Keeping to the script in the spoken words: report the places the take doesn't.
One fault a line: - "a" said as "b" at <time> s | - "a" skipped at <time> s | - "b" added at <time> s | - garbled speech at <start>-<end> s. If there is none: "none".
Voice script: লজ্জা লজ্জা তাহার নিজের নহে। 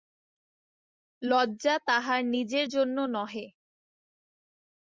- "লজ্জা" skipped at 1.8 s
- "জন্য" added at 2.7 s